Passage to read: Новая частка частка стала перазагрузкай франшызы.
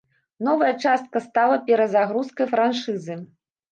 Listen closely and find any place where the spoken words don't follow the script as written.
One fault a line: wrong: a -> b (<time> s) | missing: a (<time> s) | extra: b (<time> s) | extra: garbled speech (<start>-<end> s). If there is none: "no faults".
missing: частка (1.2 s)